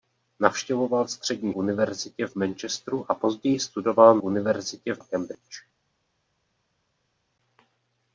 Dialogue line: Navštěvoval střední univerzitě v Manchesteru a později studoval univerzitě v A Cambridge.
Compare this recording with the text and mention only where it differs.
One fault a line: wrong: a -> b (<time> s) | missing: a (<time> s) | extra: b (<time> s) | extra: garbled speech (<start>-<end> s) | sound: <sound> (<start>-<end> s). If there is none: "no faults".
no faults